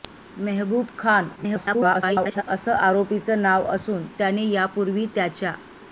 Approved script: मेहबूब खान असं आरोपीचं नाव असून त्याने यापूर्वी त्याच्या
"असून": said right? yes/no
yes